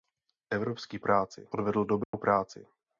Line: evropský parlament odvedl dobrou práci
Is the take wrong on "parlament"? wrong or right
wrong